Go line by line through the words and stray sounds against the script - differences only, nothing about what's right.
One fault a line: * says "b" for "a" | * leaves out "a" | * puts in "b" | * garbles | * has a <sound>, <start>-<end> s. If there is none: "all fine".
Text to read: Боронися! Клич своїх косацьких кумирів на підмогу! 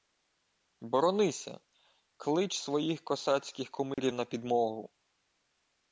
* has a dropout, 3.9-4.0 s